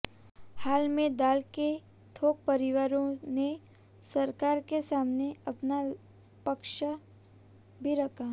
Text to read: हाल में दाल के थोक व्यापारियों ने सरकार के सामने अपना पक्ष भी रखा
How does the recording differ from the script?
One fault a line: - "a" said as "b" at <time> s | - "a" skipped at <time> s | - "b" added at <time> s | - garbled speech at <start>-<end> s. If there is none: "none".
none